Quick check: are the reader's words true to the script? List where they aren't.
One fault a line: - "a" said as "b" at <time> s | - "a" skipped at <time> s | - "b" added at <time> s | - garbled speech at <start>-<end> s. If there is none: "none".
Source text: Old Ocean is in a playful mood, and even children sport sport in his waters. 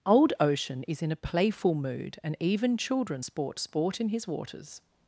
none